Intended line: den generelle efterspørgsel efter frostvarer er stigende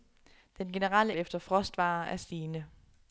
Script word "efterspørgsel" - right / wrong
wrong